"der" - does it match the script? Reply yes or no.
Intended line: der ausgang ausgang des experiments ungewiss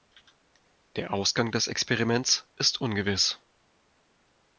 yes